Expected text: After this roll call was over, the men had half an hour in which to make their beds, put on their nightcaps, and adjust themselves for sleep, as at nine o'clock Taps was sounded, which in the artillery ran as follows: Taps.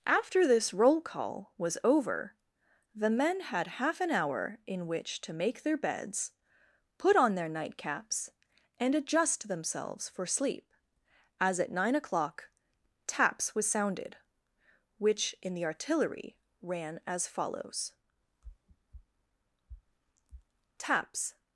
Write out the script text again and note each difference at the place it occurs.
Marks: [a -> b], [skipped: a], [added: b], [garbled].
After this roll call was over, the men had half an hour in which to make their beds, put on their nightcaps, and adjust themselves for sleep, as at nine o'clock Taps was sounded, which in the artillery ran as follows: Taps.